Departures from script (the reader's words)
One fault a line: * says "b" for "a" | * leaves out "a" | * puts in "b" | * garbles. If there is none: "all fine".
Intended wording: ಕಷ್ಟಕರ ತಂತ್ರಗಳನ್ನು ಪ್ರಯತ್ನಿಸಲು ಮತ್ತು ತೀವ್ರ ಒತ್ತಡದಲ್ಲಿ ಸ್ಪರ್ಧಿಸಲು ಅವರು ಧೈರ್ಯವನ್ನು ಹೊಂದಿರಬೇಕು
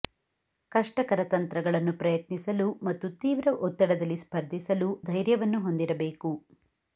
* leaves out "ಅವರು"